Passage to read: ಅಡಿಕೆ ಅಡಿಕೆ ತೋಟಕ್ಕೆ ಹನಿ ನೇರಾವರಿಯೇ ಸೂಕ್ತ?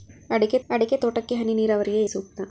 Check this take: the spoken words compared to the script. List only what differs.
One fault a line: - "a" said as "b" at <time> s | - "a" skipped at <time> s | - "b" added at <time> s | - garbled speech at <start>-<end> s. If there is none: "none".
none